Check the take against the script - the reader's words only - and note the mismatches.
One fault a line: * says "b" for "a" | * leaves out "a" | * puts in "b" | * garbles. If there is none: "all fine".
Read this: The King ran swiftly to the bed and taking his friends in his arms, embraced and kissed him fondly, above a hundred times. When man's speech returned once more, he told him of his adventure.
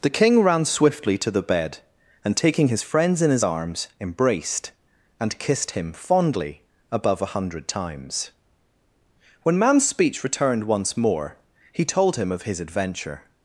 all fine